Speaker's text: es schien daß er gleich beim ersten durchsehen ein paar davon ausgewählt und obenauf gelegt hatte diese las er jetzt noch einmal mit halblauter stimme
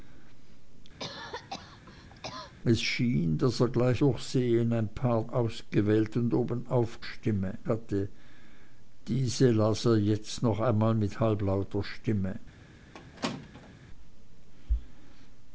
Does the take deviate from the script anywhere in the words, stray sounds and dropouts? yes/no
yes